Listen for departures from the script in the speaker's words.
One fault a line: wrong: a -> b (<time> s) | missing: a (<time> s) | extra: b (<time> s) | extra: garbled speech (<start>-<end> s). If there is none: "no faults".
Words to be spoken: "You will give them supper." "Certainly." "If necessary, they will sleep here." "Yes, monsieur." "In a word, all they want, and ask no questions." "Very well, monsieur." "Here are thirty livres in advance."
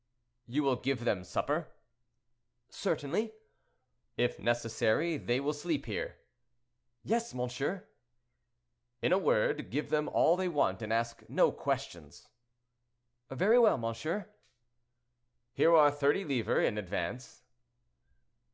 extra: give them (9.7 s)